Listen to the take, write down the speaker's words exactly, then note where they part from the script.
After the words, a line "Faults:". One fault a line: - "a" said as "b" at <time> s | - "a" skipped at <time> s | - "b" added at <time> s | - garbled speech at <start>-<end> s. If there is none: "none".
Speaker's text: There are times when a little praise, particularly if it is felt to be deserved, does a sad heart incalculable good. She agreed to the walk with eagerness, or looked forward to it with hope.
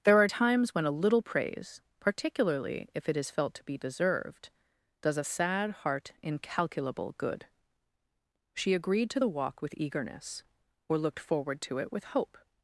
There are times when a little praise, particularly if it is felt to be deserved, does a sad heart incalculable good. She agreed to the walk with eagerness, or looked forward to it with hope.
Faults:
none